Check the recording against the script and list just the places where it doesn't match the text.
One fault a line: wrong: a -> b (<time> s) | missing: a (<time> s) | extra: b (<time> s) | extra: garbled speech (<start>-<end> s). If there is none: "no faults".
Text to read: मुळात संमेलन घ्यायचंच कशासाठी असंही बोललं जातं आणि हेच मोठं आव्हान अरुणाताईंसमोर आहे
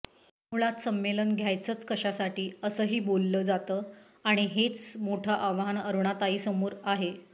no faults